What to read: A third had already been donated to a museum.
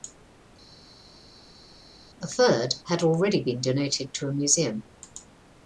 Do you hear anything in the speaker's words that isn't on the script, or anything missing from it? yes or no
no